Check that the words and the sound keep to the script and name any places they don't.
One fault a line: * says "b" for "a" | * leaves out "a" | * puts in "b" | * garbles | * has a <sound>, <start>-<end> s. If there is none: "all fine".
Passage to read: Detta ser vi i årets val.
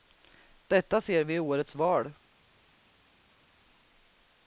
all fine